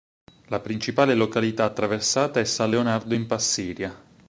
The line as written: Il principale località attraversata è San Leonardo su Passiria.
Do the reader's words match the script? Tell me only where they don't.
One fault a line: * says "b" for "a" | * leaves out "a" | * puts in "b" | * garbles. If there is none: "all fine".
* says "La" for "Il"
* says "in" for "su"